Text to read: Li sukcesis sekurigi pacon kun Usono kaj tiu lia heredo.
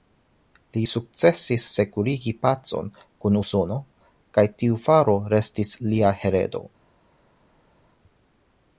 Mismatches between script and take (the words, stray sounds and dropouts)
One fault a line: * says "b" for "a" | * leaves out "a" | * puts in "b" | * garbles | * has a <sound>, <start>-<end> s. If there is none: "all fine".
* puts in "faro restis"